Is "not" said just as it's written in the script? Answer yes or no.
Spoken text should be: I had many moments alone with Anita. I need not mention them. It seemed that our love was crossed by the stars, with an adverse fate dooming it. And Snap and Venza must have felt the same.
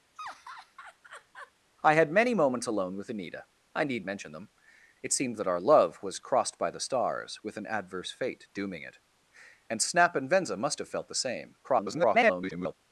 no